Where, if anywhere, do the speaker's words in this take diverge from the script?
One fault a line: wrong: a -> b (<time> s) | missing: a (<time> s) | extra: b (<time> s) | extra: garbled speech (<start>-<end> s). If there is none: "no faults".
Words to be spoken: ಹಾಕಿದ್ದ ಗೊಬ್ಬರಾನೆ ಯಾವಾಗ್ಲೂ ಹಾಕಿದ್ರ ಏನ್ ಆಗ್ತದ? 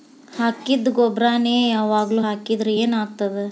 no faults